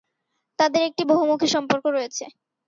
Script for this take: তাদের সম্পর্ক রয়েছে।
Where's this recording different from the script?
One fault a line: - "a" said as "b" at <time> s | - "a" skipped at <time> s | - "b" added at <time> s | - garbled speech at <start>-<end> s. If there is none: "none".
- "একটি বহুমুখী" added at 0.9 s